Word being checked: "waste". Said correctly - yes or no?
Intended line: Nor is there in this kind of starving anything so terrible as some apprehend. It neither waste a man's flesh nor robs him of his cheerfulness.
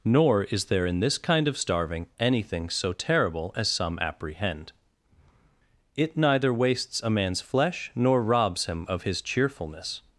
no